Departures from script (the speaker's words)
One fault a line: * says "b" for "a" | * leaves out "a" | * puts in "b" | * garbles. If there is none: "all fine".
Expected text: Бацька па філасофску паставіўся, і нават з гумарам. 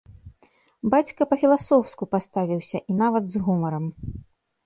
all fine